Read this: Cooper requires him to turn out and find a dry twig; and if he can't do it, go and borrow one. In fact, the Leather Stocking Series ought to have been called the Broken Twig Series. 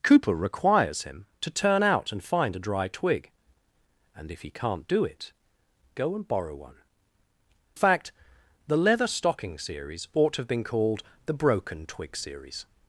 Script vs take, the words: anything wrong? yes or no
yes